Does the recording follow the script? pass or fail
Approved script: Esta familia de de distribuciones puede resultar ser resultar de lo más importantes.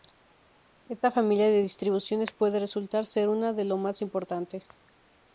fail